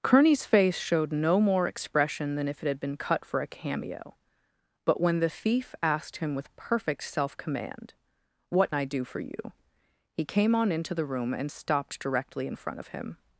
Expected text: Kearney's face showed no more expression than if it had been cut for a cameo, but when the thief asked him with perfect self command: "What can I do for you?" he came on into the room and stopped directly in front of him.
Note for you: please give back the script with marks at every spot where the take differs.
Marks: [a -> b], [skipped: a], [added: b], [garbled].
Kearney's face showed no more expression than if it had been cut for a cameo, but when the thief asked him with perfect self command: "What [skipped: can] I do for you?" he came on into the room and stopped directly in front of him.